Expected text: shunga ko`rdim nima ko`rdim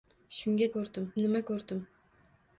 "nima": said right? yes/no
yes